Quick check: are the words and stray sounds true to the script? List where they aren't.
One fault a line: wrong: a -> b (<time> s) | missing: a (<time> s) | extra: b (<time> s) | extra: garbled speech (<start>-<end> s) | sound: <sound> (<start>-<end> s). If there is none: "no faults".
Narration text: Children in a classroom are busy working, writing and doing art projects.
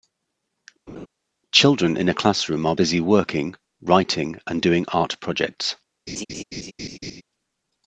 sound: laugh (0.9-1.1 s)
sound: laugh (6.1-7.2 s)